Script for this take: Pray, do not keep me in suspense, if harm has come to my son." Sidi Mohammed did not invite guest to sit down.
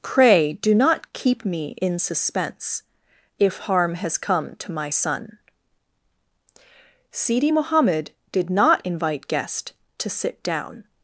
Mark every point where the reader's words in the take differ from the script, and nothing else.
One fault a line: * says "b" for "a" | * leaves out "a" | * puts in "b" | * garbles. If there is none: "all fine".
all fine